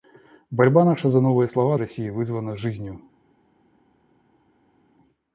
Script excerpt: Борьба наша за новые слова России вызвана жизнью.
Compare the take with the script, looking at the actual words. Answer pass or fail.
pass